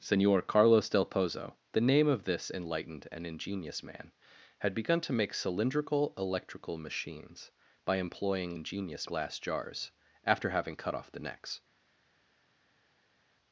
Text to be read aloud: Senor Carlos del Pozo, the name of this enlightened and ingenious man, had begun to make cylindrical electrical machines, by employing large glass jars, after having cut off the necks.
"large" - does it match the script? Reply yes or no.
no